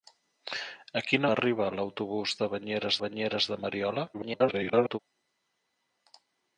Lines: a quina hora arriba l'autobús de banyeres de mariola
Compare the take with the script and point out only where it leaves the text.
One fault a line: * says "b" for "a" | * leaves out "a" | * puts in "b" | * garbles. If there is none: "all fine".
* leaves out "hora"
* puts in "banyeres"
* garbles